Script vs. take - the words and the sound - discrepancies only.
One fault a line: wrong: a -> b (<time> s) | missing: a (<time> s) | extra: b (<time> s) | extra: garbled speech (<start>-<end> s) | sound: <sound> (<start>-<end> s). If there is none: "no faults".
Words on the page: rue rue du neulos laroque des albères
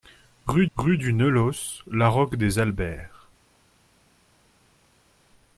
no faults